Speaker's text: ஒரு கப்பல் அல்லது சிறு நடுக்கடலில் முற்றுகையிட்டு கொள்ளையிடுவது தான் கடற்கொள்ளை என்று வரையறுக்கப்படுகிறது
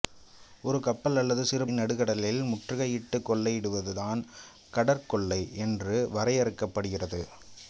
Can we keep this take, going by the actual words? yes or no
yes